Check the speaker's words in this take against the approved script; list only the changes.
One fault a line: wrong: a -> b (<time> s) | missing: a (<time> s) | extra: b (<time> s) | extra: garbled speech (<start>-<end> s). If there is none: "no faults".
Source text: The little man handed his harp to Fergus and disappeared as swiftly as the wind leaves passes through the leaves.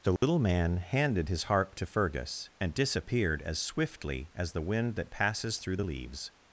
wrong: leaves -> that (4.9 s)